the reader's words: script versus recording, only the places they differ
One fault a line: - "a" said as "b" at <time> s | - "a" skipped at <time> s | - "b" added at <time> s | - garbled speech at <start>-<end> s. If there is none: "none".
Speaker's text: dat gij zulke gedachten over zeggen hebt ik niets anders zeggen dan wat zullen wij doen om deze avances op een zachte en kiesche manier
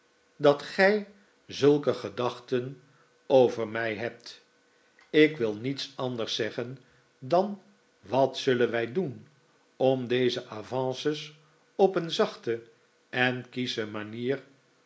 - "zeggen" said as "mij" at 3.7 s
- "wil" added at 5.4 s